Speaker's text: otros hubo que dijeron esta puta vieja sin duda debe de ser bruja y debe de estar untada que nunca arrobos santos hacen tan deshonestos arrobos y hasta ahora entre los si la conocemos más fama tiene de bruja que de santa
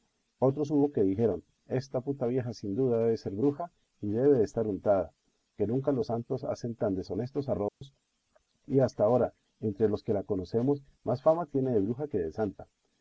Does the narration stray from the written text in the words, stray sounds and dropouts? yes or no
yes